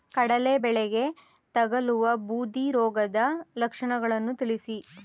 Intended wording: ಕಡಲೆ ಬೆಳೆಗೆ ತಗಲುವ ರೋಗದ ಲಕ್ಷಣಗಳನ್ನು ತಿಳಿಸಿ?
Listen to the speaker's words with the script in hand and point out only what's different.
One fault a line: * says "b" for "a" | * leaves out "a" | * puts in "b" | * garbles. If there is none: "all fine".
* puts in "ಬೂದಿ"